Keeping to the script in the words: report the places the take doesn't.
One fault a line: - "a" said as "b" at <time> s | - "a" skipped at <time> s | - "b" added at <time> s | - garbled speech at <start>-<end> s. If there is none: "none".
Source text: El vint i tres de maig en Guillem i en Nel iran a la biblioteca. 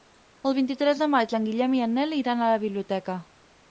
none